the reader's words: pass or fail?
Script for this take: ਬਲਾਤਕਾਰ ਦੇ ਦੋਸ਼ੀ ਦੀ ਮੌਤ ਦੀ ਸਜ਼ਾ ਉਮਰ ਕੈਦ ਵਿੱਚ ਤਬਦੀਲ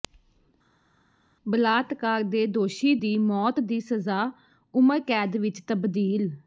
pass